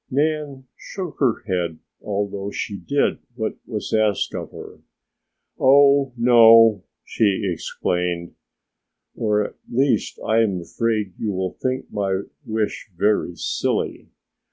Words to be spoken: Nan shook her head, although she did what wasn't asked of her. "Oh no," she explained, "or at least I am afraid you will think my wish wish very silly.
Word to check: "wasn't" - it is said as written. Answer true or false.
false